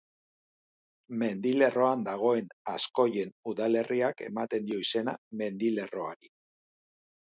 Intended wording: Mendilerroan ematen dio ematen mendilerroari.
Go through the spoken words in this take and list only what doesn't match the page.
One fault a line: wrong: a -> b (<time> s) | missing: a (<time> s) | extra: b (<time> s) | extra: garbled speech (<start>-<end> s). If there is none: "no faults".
extra: dagoen Azkoien udalerriak (2.1 s)
wrong: ematen -> izena (4.9 s)